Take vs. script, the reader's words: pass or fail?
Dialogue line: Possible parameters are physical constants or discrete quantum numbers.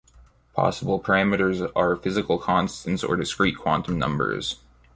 pass